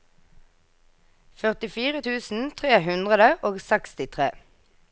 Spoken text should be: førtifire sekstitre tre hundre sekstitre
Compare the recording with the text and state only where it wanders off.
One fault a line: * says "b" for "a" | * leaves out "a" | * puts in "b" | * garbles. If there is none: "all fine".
* says "tusen" for "sekstitre"
* puts in "og"